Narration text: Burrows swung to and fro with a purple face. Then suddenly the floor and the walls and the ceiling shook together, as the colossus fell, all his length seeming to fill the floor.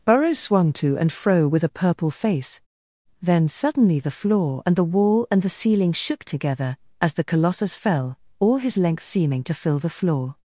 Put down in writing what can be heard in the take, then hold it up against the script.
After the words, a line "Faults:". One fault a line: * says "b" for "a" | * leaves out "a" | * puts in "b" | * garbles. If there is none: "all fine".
Burrows swung to and fro with a purple face. Then suddenly the floor and the wall and the ceiling shook together, as the colossus fell, all his length seeming to fill the floor.
Faults:
* says "wall" for "walls"